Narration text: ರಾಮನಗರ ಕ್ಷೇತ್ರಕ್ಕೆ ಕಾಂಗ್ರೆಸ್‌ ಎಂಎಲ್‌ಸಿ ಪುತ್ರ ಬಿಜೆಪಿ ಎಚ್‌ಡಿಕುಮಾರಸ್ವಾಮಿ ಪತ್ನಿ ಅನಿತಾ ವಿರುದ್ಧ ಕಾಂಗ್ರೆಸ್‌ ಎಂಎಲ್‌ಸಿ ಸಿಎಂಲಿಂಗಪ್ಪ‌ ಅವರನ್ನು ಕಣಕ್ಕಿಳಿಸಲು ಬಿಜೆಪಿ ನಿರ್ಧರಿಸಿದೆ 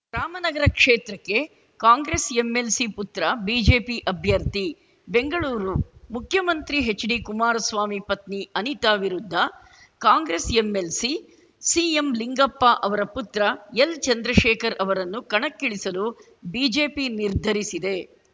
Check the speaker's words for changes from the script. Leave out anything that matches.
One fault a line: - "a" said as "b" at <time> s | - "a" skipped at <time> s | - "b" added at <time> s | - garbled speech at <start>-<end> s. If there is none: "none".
- "ಅಭ್ಯರ್ಥಿ ಬೆಂಗಳೂರು ಮುಖ್ಯಮಂತ್ರಿ" added at 4.1 s
- "ಅವರ ಪುತ್ರ ಎಲ್‌ಚಂದ್ರಶೇಖರ್" added at 12.8 s